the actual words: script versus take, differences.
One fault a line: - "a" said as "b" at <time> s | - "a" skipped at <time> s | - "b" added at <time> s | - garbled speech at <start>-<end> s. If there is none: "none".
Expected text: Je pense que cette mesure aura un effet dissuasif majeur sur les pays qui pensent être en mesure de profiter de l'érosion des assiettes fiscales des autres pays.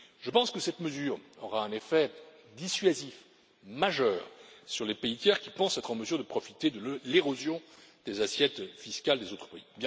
- "tiers" added at 5.2 s